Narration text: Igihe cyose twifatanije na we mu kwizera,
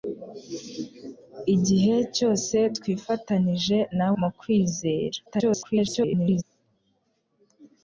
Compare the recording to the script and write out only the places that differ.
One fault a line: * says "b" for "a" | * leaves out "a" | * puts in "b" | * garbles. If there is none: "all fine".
* leaves out "we"
* garbles